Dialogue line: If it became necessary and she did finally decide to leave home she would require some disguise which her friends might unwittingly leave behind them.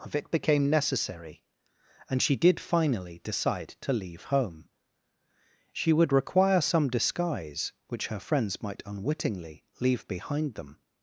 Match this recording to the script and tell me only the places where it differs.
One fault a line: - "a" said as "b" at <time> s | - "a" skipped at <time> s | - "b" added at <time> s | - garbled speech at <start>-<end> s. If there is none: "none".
- "If" said as "Of" at 0.0 s